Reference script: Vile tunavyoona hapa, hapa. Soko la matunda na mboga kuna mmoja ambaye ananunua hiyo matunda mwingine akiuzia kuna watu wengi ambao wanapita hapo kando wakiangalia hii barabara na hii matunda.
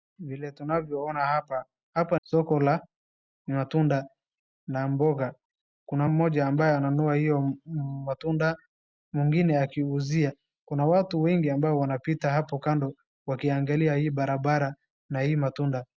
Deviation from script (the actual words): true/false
false